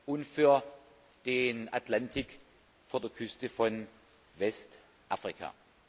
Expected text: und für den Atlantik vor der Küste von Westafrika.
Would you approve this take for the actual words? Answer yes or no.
yes